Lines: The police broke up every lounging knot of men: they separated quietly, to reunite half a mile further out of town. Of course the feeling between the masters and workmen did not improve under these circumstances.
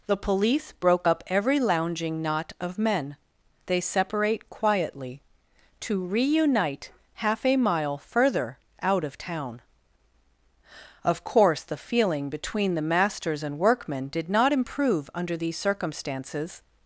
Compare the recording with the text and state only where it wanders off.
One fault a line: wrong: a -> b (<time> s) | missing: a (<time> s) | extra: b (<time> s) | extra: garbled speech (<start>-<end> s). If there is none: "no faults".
wrong: separated -> separate (3.8 s)